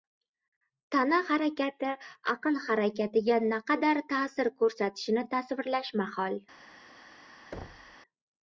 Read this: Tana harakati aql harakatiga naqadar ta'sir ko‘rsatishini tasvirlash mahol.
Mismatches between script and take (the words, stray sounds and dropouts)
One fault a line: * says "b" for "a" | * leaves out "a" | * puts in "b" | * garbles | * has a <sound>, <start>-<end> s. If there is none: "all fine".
* has a thud, 7.5-8.0 s